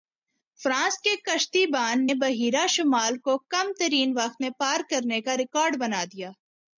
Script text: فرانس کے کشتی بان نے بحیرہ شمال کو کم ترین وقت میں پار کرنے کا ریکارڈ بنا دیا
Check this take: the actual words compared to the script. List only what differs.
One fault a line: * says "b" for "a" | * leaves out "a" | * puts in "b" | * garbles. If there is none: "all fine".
* leaves out "نے"